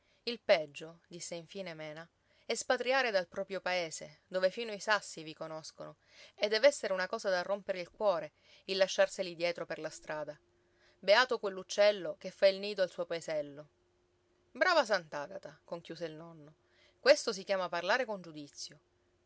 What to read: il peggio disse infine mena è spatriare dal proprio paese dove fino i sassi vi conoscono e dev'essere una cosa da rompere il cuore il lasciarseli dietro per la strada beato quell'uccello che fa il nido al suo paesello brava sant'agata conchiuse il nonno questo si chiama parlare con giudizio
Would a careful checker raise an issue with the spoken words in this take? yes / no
no